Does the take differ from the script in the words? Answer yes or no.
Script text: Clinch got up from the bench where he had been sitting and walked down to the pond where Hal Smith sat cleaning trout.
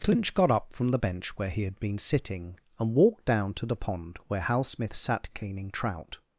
no